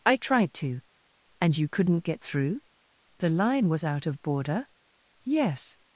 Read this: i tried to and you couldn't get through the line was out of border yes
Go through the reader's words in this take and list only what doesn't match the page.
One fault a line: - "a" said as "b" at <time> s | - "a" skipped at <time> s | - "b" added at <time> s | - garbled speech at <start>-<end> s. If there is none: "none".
none